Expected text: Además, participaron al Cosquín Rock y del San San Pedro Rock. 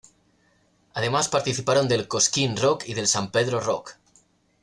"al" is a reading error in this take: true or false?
true